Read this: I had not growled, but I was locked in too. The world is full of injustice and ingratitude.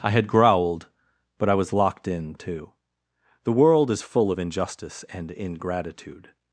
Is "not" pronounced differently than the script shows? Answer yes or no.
yes